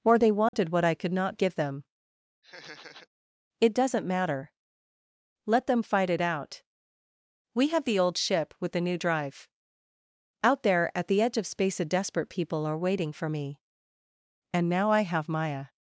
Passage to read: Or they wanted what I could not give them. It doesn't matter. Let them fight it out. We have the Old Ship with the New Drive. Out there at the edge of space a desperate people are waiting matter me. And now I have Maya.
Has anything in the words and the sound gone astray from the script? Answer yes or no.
yes